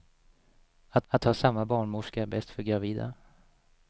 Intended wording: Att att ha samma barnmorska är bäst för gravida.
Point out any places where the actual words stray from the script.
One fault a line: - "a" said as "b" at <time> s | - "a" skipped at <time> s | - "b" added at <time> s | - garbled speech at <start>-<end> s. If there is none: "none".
none